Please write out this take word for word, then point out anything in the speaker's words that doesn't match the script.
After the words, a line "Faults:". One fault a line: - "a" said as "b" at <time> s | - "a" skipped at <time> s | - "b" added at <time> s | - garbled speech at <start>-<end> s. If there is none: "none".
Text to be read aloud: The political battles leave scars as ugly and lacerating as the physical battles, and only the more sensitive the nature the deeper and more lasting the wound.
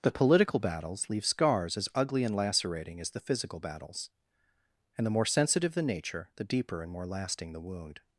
The political battles leave scars as ugly and lacerating as the physical battles, and the more sensitive the nature the deeper and more lasting the wound.
Faults:
- "only" skipped at 5.1 s